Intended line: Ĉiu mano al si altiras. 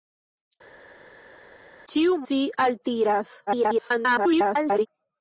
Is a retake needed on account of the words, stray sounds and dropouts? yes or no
yes